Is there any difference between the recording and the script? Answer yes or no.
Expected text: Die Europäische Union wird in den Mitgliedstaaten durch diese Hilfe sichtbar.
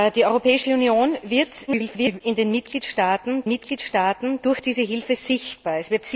yes